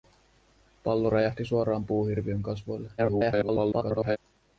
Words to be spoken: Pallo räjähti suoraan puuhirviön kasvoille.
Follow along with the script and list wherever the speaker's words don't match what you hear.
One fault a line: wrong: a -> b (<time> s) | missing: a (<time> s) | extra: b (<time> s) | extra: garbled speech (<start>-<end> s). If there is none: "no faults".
extra: garbled speech (3.0-4.2 s)